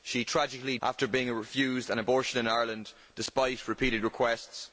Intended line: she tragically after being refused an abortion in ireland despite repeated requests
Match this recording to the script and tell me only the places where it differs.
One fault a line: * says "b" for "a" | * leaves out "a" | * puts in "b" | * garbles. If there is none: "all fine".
all fine